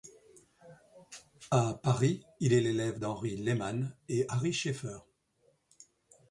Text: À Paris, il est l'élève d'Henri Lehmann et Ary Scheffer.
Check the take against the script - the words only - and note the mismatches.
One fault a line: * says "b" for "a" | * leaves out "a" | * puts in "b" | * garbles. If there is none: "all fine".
all fine